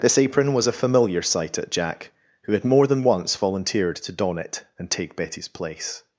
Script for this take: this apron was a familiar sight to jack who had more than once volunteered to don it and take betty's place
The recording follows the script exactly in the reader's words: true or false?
false